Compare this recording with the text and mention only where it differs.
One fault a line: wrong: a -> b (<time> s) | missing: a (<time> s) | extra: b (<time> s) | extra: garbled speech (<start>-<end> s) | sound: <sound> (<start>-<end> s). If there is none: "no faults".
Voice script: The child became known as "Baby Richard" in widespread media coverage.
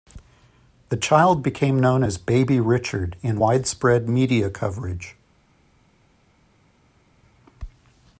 no faults